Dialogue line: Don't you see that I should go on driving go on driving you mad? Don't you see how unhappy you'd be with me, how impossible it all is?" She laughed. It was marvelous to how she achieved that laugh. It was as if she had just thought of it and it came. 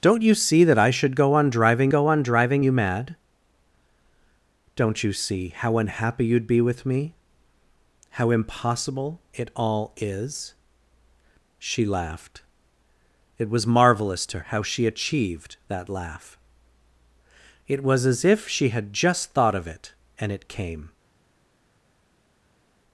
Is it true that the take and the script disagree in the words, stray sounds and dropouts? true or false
false